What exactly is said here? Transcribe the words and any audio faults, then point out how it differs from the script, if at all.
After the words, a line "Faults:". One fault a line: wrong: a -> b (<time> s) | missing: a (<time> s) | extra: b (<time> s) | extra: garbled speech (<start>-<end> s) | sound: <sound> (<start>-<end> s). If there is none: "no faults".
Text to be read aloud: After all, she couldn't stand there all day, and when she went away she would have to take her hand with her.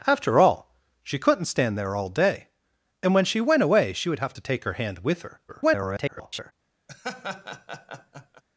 After all, she couldn't stand there all day, and when she went away she would have to take her hand with her. [garbled]
Faults:
extra: garbled speech (5.5-6.5 s)
sound: laugh (6.9-8.4 s)